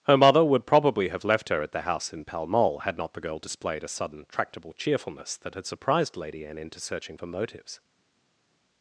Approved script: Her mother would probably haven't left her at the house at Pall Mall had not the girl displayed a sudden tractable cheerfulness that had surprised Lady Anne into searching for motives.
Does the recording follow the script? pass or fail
fail